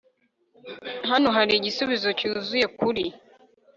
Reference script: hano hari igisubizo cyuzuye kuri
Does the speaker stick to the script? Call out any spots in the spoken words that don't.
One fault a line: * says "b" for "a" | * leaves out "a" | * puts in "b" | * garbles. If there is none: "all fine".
all fine